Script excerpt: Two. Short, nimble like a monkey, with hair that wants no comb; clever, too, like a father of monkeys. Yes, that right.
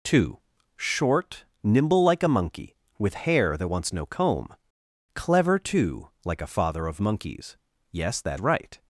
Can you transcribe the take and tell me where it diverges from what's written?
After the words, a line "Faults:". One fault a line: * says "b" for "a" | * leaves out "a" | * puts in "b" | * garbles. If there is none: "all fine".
Two. Short, nimble like a monkey, with hair that wants no comb; clever, too, like a father of monkeys. Yes, that right.
Faults:
all fine